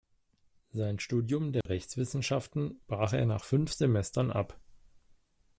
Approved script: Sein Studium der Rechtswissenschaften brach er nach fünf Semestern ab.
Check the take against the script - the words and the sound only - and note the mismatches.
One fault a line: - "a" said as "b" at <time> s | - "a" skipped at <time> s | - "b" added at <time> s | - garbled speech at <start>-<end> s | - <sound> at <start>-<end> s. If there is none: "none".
- dropout at 1.6-1.7 s